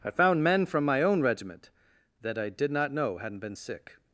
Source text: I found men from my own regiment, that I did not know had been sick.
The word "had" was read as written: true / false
false